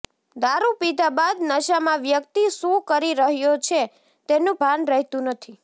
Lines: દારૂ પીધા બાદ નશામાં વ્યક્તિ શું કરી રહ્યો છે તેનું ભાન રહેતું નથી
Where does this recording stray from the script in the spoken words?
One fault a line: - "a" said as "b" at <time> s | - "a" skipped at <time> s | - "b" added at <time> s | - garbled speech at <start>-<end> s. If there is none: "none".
none